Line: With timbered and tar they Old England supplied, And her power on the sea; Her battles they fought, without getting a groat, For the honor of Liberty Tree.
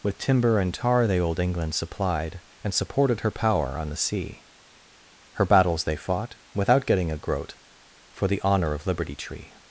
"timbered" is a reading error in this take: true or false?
true